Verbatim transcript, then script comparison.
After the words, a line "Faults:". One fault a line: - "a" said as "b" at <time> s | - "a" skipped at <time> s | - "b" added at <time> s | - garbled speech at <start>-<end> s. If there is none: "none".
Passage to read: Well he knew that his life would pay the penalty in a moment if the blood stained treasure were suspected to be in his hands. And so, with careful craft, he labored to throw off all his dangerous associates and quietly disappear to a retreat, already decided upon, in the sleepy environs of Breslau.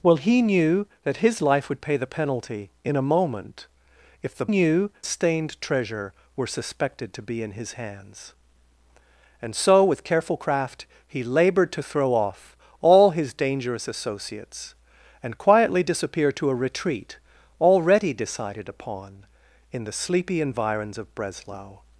Well he knew that his life would pay the penalty in a moment if the knew stained treasure were suspected to be in his hands. And so, with careful craft, he labored to throw off all his dangerous associates and quietly disappear to a retreat, already decided upon, in the sleepy environs of Breslau.
Faults:
- "blood" said as "knew" at 4.4 s